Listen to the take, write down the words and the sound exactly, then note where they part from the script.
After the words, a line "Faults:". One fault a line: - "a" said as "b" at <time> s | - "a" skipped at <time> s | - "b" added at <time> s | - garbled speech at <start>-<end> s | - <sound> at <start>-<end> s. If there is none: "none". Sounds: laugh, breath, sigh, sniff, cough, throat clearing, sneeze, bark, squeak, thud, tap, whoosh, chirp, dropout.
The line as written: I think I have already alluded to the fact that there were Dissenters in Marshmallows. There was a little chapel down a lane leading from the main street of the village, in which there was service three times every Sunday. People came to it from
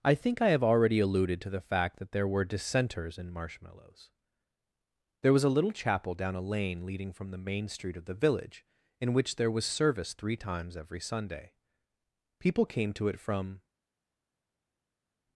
I think I have already alluded to the fact that there were Dissenters in Marshmallows. There was a little chapel down a lane leading from the main street of the village, in which there was service three times every Sunday. People came to it from
Faults:
none